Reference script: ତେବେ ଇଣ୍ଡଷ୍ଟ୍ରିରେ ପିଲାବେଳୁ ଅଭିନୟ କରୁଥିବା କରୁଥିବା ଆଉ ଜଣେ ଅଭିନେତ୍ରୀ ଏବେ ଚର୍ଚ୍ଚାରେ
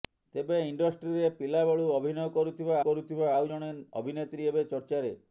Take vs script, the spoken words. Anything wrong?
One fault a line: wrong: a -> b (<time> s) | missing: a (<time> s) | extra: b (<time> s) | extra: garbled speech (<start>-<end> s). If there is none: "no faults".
no faults